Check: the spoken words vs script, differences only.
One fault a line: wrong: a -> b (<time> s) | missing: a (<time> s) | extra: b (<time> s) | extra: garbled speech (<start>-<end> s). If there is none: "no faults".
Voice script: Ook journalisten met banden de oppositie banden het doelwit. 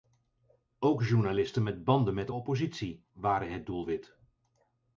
extra: met (2.1 s)
wrong: banden -> waren (3.1 s)